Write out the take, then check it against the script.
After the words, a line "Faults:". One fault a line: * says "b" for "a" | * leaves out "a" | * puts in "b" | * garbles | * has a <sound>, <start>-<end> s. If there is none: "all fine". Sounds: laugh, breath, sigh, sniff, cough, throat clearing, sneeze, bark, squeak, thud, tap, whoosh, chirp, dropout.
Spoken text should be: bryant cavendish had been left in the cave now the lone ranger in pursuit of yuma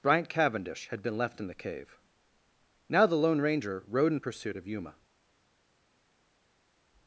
bryant cavendish had been left in the cave now the lone ranger rode in pursuit of yuma
Faults:
* puts in "rode"